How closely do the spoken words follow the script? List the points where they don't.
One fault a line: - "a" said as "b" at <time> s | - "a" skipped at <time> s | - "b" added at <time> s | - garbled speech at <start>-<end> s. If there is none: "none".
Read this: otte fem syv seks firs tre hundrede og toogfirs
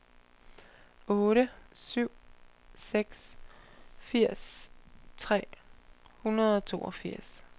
- "fem" skipped at 1.5 s